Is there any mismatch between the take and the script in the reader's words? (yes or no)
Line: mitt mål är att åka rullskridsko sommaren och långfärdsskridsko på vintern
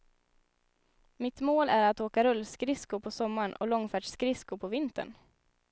yes